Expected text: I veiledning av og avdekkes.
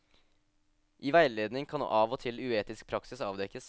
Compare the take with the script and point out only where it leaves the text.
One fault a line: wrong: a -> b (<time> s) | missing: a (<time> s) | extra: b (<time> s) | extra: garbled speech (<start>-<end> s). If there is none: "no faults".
extra: kan (1.7 s)
extra: til uetisk praksis (2.2 s)